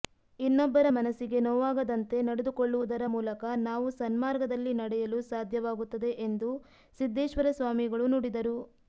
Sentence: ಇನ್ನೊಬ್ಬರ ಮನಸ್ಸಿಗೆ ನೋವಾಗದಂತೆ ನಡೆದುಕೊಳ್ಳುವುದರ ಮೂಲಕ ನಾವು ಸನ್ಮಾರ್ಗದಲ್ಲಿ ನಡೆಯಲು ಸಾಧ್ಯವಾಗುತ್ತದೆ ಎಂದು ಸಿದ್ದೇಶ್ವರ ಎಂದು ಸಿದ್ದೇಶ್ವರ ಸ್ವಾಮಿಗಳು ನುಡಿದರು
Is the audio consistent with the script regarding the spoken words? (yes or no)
no